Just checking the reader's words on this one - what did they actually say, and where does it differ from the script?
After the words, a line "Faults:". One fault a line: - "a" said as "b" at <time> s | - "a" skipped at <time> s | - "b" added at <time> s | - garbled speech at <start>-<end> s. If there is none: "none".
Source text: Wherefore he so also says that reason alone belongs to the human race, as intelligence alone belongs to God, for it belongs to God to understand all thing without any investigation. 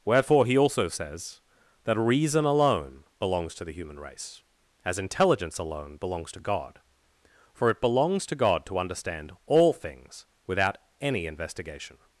Wherefore he also says that reason alone belongs to the human race, as intelligence alone belongs to God, for it belongs to God to understand all things without any investigation.
Faults:
- "so" skipped at 0.6 s
- "thing" said as "things" at 9.7 s